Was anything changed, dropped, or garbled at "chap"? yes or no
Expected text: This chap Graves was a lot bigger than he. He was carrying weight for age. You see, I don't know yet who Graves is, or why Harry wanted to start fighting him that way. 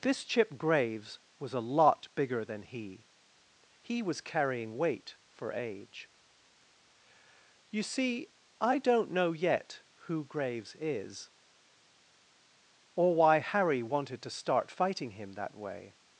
yes